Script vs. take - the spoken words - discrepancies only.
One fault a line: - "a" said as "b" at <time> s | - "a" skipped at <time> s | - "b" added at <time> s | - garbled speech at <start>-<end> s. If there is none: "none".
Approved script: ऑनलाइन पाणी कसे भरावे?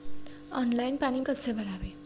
none